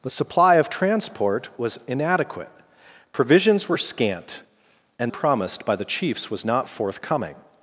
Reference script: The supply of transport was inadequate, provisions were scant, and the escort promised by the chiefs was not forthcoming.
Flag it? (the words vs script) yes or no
yes